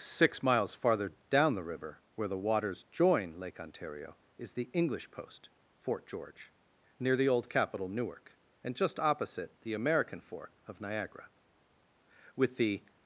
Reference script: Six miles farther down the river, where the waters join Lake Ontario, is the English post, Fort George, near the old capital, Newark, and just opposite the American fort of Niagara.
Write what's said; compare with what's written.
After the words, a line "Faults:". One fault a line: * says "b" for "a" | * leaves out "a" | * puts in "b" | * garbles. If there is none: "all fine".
Six miles farther down the river, where the waters join Lake Ontario, is the English post, Fort George, near the old capital, Newark, and just opposite the American fort of Niagara. With the
Faults:
* puts in "With the"